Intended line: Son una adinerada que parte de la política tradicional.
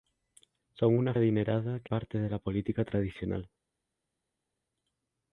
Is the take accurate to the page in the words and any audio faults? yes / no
yes